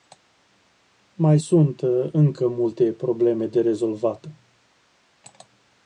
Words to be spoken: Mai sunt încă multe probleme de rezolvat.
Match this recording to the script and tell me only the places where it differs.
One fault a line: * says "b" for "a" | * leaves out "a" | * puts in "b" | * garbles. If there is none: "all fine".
all fine